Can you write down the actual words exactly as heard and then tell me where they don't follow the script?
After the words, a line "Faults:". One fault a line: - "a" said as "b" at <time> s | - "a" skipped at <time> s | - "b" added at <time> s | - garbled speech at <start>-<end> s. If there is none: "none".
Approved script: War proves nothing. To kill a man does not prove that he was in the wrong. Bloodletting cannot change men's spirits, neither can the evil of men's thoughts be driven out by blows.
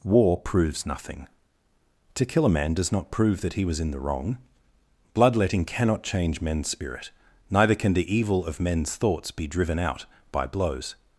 War proves nothing. To kill a man does not prove that he was in the wrong. Bloodletting cannot change men's spirit, neither can the evil of men's thoughts be driven out by blows.
Faults:
- "spirits" said as "spirit" at 6.7 s